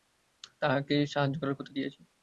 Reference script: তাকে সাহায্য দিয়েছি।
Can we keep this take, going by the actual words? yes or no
no